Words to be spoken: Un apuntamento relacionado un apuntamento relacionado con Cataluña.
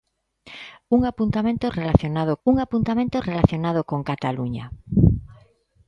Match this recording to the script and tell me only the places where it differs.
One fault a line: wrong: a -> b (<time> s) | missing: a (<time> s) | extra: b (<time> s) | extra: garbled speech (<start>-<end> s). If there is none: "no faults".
no faults